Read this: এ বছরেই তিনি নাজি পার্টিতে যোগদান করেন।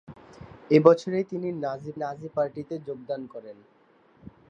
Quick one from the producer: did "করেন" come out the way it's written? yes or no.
yes